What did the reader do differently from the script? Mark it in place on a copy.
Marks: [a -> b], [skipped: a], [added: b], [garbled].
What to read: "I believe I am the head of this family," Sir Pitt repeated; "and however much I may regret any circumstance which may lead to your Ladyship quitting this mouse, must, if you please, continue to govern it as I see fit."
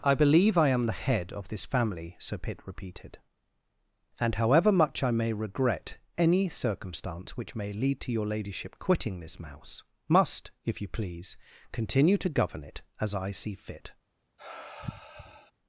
"I believe I am the head of this family," Sir Pitt repeated; "and however much I may regret any circumstance which may lead to your Ladyship quitting this mouse, must, if you please, continue to govern it as I see fit."